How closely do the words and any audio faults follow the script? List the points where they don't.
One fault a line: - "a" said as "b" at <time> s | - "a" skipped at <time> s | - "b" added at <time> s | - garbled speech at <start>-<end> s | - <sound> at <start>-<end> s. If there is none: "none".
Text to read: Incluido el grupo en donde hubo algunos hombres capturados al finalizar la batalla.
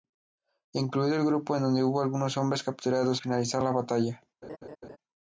- "al" skipped at 3.2 s
- laugh at 4.4-5.0 s